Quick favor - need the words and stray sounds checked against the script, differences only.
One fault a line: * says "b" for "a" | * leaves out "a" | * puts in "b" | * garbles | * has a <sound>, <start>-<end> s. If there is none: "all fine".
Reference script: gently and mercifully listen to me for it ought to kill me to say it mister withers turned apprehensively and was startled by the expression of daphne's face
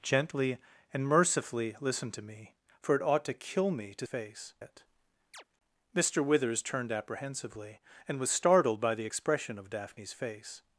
* says "face" for "say"
* has a chirp, 5.3-5.4 s